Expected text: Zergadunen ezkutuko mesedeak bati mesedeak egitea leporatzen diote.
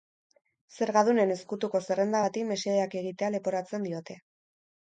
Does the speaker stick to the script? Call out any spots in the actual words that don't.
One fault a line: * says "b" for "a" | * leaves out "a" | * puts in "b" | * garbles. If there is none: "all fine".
* says "zerrenda" for "mesedeak"